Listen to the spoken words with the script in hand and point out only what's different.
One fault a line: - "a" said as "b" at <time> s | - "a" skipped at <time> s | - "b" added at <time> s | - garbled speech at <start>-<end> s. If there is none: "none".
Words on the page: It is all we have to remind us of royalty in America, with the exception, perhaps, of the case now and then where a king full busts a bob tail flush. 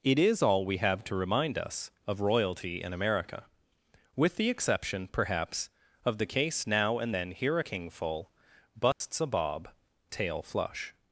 - "where" said as "here" at 7.3 s